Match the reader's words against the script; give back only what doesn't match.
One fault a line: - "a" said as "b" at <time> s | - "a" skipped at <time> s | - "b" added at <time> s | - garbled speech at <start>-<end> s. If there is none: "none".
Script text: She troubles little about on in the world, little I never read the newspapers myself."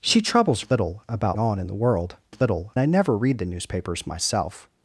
none